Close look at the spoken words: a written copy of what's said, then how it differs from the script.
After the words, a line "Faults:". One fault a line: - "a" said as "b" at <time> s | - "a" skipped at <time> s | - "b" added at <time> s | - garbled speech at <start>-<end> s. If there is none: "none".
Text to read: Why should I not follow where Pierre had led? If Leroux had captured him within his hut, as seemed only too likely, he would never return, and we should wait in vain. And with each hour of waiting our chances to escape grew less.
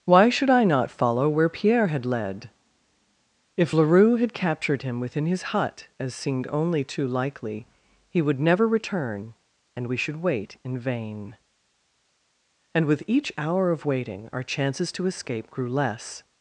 Why should I not follow where Pierre had led? If Leroux had captured him within his hut, as seemed only too likely, he would never return, and we should wait in vain. And with each hour of waiting our chances to escape grew less.
Faults:
none